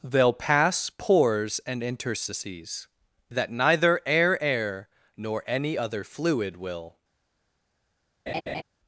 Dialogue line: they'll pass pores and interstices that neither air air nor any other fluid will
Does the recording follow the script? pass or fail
pass